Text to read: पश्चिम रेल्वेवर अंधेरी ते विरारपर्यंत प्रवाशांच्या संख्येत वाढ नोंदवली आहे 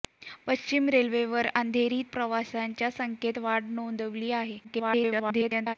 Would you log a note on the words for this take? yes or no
yes